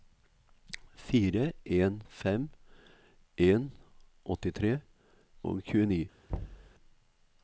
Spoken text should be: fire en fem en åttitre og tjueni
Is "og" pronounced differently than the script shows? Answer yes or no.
no